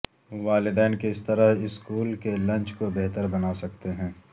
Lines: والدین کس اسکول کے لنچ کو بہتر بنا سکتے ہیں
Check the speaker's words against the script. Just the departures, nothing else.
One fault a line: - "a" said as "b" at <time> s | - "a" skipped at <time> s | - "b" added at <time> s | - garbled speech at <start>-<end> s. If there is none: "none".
- "طرح" added at 1.2 s